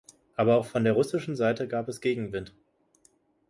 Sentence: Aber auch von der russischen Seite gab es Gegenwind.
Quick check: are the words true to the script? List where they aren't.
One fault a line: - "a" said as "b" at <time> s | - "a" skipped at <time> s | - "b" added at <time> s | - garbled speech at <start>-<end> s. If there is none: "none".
none